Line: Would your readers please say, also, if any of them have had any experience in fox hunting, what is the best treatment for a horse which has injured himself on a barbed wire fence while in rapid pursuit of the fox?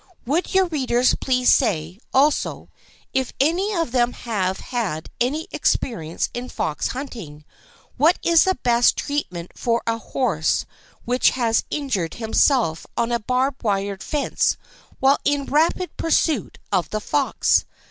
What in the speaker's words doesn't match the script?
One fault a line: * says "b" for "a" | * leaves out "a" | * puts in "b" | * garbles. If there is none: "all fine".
all fine